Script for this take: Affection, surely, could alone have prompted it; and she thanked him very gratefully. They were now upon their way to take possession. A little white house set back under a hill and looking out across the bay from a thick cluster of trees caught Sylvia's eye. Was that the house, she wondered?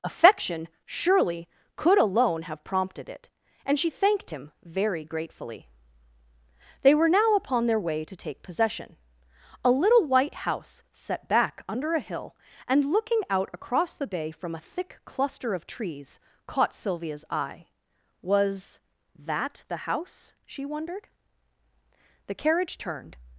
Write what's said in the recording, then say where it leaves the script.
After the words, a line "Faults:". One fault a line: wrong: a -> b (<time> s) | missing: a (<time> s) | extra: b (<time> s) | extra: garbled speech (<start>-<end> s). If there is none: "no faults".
Affection, surely, could alone have prompted it; and she thanked him very gratefully. They were now upon their way to take possession. A little white house set back under a hill and looking out across the bay from a thick cluster of trees caught Sylvia's eye. Was that the house, she wondered? The carriage turned
Faults:
extra: The carriage turned (22.3 s)